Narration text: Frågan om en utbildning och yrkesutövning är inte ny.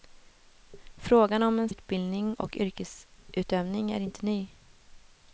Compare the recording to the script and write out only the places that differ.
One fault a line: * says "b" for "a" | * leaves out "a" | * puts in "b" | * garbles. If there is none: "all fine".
all fine